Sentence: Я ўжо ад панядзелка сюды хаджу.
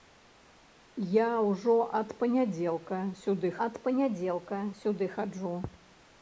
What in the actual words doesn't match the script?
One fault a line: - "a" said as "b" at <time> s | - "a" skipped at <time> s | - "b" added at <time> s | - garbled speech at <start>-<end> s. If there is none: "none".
- "ад панядзелка сюды" added at 3.6 s